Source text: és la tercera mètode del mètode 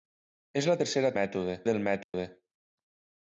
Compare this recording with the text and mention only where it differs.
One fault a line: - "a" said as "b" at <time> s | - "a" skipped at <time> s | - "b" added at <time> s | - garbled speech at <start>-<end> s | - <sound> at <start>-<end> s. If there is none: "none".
- dropout at 2.0-2.1 s